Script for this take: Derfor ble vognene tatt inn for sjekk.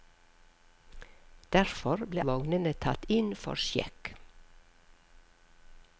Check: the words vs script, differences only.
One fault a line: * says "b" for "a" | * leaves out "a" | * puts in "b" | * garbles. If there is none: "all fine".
all fine